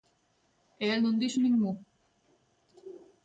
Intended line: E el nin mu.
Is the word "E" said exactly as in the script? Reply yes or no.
yes